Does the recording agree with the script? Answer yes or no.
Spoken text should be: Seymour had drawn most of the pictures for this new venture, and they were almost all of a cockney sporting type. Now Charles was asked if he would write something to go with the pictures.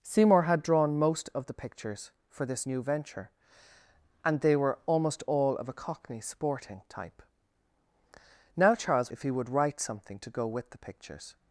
no